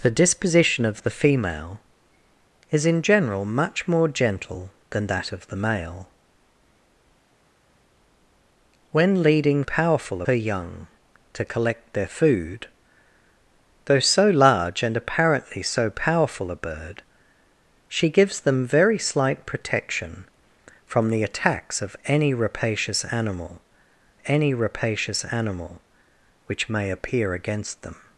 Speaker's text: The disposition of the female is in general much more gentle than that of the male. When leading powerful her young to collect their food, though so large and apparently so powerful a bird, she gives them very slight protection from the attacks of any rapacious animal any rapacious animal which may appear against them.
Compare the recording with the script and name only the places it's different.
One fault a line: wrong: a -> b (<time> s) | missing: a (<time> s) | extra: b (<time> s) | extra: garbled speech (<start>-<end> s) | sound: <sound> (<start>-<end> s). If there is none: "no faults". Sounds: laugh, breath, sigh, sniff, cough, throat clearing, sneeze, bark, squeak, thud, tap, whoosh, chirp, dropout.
no faults